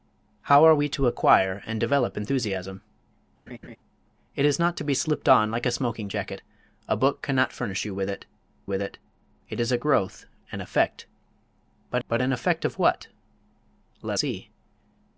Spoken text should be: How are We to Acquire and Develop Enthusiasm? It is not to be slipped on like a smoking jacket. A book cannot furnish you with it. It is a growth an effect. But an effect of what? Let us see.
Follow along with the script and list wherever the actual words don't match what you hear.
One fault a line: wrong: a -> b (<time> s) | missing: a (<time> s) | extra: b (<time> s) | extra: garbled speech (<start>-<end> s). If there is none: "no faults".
extra: with (8.6 s)
extra: It (9.5 s)
extra: but (12.1 s)
missing: us (14.2 s)